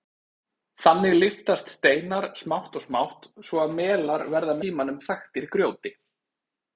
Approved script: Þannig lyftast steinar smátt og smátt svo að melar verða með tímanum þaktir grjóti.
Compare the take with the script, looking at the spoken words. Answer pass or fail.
fail